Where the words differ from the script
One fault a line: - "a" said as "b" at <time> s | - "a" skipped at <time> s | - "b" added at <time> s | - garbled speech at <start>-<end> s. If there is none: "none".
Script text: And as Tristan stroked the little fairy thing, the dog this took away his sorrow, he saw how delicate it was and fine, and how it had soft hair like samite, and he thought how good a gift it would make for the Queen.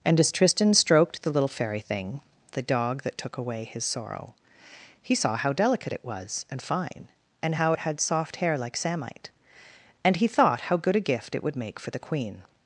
- "this" said as "that" at 3.0 s